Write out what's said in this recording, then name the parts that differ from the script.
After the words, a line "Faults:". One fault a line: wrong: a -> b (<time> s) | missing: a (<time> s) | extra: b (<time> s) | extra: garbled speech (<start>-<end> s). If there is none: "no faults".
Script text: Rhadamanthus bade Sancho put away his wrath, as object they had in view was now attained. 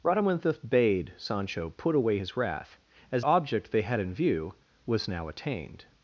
Rhadamanthus bade Sancho put away his wrath, as object they had in view was now attained.
Faults:
no faults